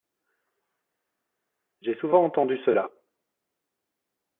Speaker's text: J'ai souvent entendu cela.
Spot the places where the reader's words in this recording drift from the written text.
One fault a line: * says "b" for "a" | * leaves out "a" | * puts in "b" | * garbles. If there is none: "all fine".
all fine